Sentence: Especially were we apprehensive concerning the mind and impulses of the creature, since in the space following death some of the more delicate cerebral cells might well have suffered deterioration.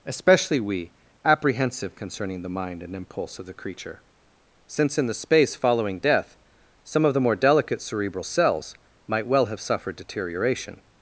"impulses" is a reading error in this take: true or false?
true